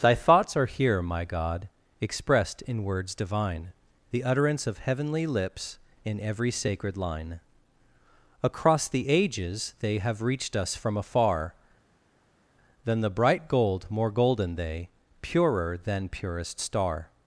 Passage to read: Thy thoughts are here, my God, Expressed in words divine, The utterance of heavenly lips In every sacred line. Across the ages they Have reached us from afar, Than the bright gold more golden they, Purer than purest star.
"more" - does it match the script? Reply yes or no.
yes